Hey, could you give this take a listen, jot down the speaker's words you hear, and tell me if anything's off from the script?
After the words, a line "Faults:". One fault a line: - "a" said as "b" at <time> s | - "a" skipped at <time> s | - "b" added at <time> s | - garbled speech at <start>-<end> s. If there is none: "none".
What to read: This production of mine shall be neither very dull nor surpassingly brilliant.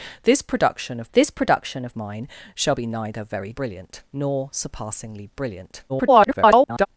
This production of this production of mine shall be neither very brilliant nor surpassingly brilliant. [garbled]
Faults:
- "this production of" added at 1.1 s
- "dull" said as "brilliant" at 3.6 s
- garbled speech at 5.9-6.9 s